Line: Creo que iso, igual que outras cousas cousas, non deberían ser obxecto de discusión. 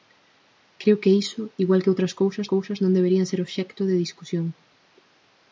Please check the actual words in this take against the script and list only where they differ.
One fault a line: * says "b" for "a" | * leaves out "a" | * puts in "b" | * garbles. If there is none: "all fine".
all fine